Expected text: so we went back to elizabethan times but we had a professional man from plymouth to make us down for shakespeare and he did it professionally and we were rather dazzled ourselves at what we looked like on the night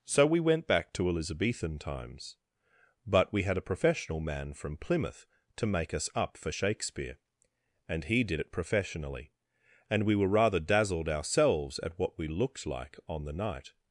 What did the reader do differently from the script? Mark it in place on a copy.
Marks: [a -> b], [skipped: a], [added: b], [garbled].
so we went back to elizabethan times but we had a professional man from plymouth to make us [down -> up] for shakespeare and he did it professionally and we were rather dazzled ourselves at what we looked like on the night